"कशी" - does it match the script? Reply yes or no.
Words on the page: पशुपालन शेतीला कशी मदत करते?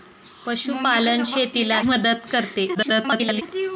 no